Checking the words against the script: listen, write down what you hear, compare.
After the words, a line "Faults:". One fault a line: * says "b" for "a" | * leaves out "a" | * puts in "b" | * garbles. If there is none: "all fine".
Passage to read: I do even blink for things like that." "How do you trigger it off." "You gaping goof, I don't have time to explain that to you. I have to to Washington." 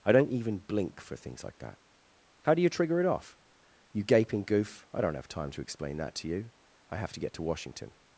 I don't even blink for things like that." "How do you trigger it off." "You gaping goof, I don't have time to explain that to you. I have to get to Washington."
Faults:
* says "don't" for "do"
* puts in "get"